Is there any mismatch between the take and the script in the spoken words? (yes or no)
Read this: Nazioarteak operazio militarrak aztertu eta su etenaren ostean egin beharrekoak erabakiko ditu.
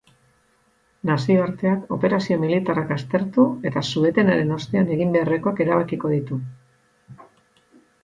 no